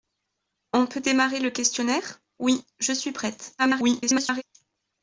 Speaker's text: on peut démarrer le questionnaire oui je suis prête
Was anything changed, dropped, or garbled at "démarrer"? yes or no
no